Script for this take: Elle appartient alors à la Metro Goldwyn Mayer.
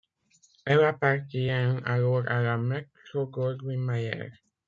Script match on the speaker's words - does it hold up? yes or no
yes